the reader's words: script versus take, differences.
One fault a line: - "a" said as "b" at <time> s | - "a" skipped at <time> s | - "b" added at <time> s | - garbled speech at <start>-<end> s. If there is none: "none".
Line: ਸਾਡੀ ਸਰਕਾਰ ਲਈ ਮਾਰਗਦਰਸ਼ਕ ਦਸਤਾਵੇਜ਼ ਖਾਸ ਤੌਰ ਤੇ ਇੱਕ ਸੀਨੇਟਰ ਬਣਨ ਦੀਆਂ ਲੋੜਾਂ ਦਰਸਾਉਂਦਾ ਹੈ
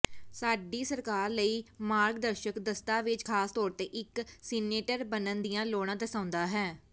none